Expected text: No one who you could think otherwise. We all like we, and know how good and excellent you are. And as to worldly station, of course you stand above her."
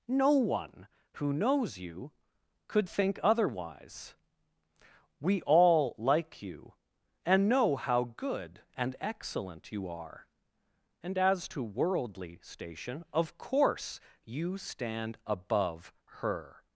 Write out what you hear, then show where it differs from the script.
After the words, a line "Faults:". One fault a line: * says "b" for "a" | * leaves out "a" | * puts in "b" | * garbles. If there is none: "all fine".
No one who knows you could think otherwise. We all like you, and know how good and excellent you are. And as to worldly station, of course you stand above her."
Faults:
* puts in "knows"
* says "you" for "we"